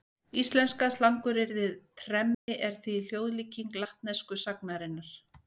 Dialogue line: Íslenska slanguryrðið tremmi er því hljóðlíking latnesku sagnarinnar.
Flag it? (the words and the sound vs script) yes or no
yes